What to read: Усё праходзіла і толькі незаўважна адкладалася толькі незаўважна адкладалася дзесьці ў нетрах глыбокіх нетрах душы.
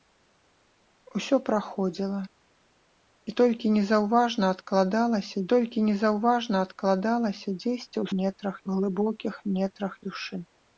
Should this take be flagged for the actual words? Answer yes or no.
no